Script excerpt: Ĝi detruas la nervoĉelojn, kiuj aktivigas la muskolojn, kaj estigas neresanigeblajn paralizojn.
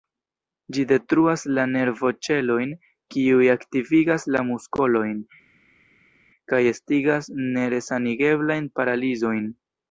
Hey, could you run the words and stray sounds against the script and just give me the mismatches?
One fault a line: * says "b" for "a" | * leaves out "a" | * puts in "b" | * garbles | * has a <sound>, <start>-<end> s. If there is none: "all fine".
all fine